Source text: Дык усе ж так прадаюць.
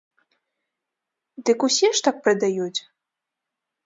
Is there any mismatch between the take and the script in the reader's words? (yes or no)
no